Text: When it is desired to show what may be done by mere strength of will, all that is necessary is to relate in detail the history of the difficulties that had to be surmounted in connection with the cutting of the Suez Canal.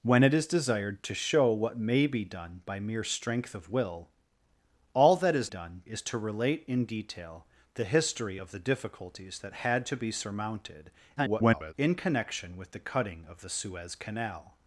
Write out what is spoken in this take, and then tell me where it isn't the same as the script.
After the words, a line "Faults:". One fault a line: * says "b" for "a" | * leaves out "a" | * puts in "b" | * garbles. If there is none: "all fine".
When it is desired to show what may be done by mere strength of will, all that is done is to relate in detail the history of the difficulties that had to be surmounted [garbled] in connection with the cutting of the Suez Canal.
Faults:
* says "done" for "necessary"
* garbles